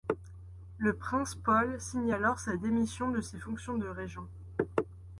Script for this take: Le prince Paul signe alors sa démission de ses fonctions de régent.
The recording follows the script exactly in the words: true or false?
true